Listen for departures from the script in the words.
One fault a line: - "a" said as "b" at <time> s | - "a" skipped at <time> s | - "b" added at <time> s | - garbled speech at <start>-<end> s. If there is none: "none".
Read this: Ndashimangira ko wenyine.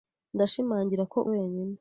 none